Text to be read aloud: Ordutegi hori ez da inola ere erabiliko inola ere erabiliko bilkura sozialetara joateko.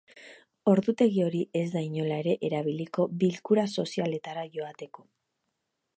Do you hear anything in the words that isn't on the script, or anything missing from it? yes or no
yes